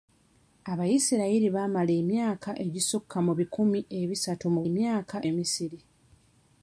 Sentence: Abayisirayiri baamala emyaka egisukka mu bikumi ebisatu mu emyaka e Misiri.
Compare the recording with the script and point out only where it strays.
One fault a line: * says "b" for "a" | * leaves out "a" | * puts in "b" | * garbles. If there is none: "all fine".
all fine